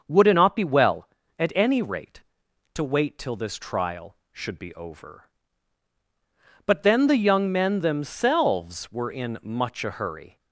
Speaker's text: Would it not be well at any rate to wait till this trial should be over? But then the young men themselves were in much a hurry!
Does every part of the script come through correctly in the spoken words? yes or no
yes